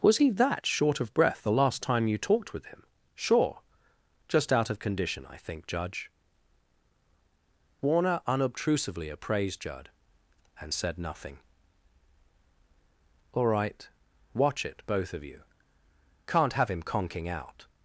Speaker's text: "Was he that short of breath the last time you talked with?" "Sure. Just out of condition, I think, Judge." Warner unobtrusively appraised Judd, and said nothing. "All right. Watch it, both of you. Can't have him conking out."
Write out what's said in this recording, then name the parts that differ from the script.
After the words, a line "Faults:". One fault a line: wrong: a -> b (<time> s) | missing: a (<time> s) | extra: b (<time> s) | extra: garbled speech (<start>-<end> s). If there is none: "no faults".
"Was he that short of breath the last time you talked with him?" "Sure. Just out of condition, I think, Judge." Warner unobtrusively appraised Judd, and said nothing. "All right. Watch it, both of you. Can't have him conking out."
Faults:
extra: him (2.6 s)